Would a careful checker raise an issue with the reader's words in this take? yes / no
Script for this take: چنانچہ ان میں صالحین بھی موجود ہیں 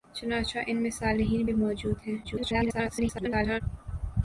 yes